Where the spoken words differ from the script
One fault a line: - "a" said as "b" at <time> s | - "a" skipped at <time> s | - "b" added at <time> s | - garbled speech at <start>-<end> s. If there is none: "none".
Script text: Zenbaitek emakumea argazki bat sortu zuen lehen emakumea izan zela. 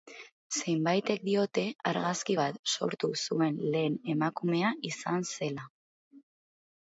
- "emakumea" said as "diote" at 1.3 s